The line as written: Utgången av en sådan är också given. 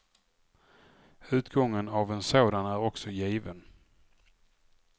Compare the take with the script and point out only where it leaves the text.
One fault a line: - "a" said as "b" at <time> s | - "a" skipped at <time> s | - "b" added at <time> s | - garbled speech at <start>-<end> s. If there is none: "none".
none